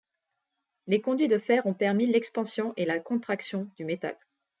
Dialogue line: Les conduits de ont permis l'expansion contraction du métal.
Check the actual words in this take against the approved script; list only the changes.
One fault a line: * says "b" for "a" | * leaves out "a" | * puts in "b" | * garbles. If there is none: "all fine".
* puts in "fer"
* puts in "et la"